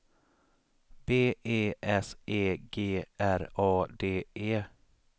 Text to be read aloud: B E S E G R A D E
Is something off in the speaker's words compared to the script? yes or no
no